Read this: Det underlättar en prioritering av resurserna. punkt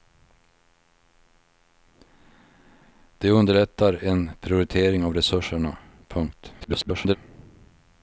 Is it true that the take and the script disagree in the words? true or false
true